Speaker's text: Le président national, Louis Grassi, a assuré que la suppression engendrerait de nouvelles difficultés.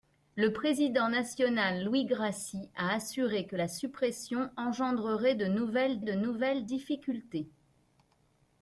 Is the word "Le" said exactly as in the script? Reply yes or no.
yes